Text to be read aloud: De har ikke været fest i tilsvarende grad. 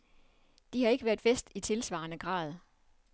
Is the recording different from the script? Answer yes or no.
no